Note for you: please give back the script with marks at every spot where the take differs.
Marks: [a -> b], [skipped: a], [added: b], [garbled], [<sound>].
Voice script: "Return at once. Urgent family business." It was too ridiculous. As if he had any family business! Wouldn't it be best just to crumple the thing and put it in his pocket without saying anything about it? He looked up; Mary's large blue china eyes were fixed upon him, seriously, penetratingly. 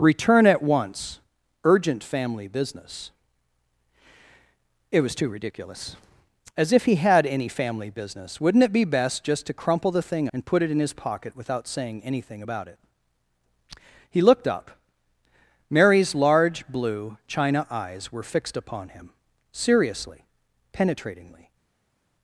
"Return at once. Urgent family business." It was too ridiculous. As if he had any family business! Wouldn't it be best just to crumple the thing and put it in his pocket without saying anything about it? He looked up; Mary's large blue china eyes were fixed upon him, seriously, penetratingly.